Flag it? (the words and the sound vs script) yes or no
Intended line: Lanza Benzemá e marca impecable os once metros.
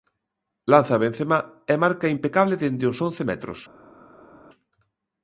yes